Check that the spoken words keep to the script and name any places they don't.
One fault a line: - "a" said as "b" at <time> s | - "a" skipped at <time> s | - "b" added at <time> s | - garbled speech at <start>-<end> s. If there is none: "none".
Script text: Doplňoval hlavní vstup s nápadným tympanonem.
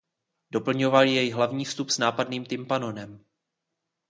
- "jej" added at 1.0 s